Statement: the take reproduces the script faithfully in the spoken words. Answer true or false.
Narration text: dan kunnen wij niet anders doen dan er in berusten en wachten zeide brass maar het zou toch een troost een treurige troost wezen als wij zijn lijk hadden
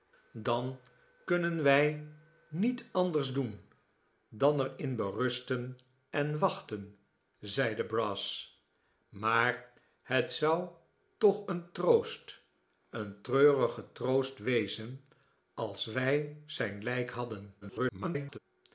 false